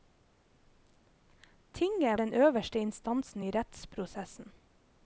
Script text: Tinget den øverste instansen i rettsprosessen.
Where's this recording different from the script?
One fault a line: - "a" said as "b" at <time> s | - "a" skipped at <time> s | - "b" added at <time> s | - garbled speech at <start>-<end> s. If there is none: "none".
none